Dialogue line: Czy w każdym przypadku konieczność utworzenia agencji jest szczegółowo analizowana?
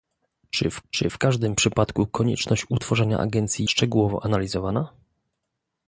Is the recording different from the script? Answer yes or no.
yes